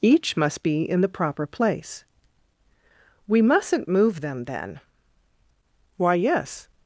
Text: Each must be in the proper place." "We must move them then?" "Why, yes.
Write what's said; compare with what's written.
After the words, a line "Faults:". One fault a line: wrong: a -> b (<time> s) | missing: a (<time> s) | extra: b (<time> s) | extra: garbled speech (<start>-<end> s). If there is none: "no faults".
Each must be in the proper place." "We mustn't move them then?" "Why, yes.
Faults:
wrong: must -> mustn't (3.4 s)